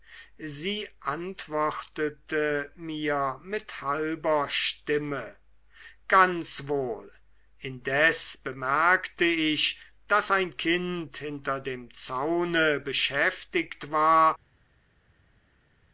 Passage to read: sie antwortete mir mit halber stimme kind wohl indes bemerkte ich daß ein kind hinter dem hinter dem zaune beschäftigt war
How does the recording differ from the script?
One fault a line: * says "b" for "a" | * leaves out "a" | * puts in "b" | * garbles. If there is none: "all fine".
* says "ganz" for "kind"
* leaves out "hinter dem"